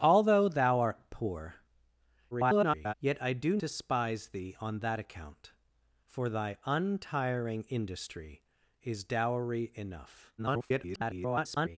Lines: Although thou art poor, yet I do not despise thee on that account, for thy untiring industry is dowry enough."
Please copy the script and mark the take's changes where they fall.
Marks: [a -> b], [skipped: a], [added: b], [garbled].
Although thou art poor, [garbled] yet I do [skipped: not] despise thee on that account, for thy untiring industry is dowry enough." [garbled]